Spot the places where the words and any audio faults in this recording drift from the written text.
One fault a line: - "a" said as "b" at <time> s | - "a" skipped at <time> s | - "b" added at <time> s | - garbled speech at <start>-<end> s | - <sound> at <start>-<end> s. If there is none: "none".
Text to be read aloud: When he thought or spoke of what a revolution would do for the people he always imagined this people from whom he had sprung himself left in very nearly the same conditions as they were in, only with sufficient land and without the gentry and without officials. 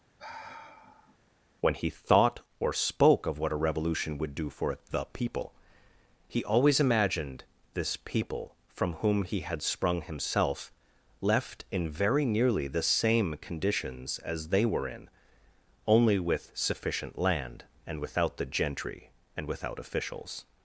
- sigh at 0.2-1.2 s